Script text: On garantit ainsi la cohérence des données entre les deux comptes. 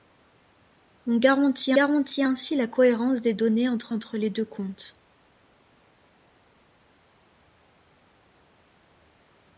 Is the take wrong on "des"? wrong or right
right